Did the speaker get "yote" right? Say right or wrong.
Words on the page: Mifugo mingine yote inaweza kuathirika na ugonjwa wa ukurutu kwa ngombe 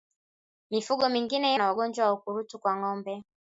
wrong